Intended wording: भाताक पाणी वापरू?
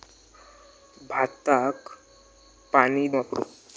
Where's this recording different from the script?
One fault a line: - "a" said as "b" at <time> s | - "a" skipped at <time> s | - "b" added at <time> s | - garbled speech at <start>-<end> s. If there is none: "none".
none